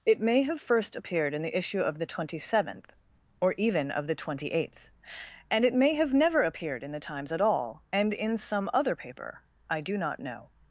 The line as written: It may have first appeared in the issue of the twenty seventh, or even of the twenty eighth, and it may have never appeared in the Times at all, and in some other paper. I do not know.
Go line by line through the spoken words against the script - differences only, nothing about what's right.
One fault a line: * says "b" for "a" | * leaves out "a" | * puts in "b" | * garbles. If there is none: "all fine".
all fine